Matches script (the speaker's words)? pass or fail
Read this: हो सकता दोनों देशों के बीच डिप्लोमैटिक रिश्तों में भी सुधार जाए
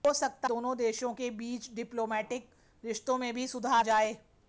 pass